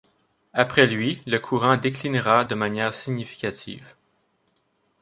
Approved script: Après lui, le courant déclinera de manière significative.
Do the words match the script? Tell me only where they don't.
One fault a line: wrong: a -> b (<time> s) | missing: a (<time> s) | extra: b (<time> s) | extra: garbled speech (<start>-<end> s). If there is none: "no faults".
no faults